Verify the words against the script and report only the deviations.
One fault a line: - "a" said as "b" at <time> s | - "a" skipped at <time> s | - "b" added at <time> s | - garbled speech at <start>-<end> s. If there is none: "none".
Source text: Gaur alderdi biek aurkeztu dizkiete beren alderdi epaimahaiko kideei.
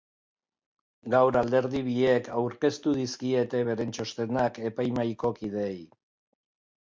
- "alderdi" said as "txostenak" at 4.0 s